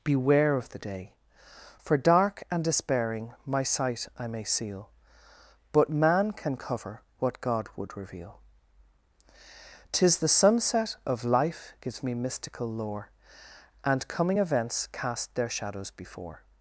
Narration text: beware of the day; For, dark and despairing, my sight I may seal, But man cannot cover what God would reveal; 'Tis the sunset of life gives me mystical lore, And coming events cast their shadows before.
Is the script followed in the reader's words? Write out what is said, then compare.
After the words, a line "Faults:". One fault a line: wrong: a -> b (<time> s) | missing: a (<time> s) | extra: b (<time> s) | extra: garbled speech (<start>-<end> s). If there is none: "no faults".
beware of the day; For, dark and despairing, my sight I may seal, But man can cover what God would reveal; 'Tis the sunset of life gives me mystical lore, And coming events cast their shadows before.
Faults:
wrong: cannot -> can (6.3 s)